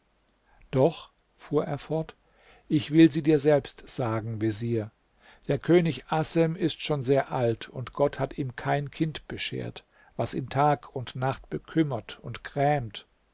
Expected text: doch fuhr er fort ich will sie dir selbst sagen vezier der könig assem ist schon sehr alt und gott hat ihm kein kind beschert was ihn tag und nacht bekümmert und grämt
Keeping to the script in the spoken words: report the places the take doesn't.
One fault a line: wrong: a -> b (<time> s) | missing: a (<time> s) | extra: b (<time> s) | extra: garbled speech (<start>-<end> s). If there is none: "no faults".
no faults